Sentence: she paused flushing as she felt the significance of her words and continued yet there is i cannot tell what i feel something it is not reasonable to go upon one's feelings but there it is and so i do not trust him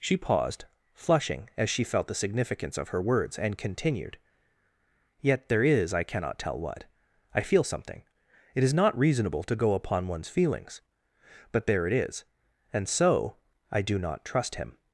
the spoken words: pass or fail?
pass